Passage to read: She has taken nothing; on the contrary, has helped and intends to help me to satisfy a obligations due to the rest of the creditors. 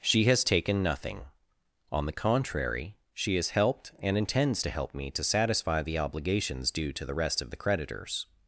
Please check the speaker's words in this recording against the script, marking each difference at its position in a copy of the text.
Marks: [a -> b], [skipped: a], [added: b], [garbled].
She has taken nothing; on the contrary, [added: she] has helped and intends to help me to satisfy [a -> the] obligations due to the rest of the creditors.